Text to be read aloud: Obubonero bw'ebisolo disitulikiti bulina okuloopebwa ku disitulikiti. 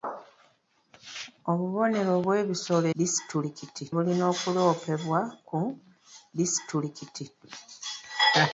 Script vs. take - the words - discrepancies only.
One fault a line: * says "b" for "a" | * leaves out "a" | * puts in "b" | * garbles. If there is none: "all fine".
all fine